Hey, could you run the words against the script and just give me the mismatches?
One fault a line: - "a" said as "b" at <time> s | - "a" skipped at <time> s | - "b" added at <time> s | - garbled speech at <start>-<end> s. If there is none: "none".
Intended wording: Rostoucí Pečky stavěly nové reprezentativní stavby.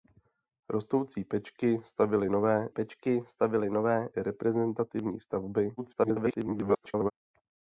- "Pečky stavěly nové" added at 2.7 s
- garbled speech at 5.8-7.1 s